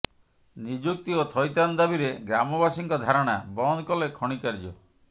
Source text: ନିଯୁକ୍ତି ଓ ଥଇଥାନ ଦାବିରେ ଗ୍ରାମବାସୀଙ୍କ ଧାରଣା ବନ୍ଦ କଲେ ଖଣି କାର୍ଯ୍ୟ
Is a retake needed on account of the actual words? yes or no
no